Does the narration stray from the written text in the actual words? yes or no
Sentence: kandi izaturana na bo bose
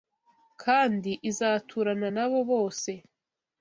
no